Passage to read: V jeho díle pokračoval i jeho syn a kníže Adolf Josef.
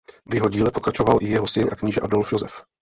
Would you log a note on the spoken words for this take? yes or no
no